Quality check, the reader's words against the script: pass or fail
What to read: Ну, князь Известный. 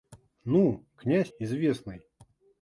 pass